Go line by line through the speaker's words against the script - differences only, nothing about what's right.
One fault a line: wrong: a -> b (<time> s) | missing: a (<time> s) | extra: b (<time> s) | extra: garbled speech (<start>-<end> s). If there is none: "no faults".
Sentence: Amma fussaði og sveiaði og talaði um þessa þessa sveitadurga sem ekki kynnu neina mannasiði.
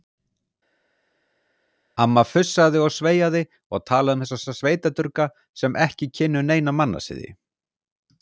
no faults